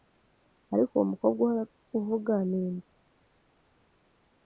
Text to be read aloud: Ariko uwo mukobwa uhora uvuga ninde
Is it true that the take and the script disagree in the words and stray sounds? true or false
false